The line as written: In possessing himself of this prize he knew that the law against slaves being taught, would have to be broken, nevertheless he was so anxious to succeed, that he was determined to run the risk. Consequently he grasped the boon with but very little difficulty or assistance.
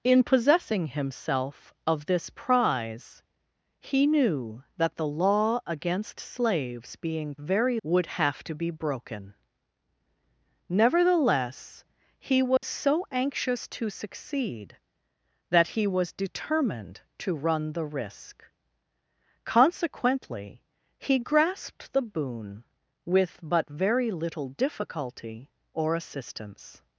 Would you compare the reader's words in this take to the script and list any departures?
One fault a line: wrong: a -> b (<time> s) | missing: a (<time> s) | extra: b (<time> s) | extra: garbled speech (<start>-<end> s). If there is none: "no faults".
wrong: taught -> very (7.4 s)